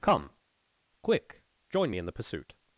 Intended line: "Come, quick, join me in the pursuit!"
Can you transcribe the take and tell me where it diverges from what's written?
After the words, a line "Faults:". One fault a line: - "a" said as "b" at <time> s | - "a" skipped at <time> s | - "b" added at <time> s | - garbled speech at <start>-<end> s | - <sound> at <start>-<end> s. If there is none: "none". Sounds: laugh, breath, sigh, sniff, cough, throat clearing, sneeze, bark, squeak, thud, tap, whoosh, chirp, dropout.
"Come, quick, join me in the pursuit!"
Faults:
none